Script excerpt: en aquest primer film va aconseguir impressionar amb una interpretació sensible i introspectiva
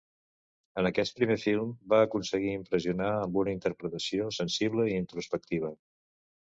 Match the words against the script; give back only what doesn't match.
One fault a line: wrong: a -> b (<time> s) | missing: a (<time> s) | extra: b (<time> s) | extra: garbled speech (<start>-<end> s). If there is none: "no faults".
no faults